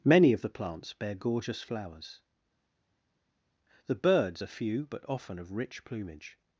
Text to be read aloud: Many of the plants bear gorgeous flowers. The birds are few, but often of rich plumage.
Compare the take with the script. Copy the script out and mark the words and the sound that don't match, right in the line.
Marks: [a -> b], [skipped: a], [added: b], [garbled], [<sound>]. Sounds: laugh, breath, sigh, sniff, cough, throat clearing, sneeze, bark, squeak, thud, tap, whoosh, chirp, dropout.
Many of the plants bear gorgeous flowers. The birds are few, but often of rich plumage.